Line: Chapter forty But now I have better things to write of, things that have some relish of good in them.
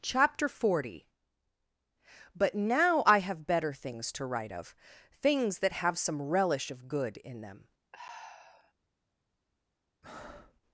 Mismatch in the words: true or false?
false